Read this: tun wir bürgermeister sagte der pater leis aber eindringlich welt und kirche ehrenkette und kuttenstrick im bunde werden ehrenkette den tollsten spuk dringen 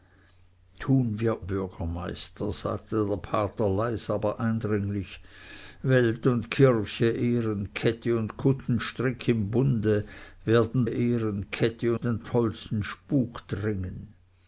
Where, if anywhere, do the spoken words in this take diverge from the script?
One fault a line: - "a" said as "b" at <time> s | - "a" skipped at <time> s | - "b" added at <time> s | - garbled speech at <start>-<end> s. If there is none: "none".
none